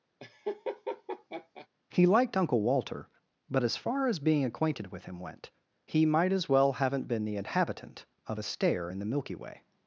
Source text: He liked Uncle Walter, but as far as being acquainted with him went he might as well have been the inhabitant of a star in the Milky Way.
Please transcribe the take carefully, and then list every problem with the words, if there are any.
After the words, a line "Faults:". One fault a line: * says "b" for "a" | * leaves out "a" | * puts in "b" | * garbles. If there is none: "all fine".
He liked Uncle Walter, but as far as being acquainted with him went he might as well haven't been the inhabitant of a stair in the Milky Way.
Faults:
* says "haven't" for "have"
* says "stair" for "star"